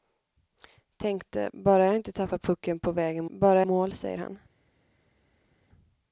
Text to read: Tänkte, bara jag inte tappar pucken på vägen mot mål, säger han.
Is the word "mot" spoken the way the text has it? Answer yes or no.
no